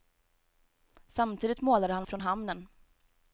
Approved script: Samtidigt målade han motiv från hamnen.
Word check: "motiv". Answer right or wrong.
wrong